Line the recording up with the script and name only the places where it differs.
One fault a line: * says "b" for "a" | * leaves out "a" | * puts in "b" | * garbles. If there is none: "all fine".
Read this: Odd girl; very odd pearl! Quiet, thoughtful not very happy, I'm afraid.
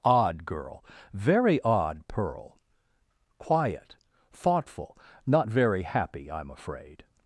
all fine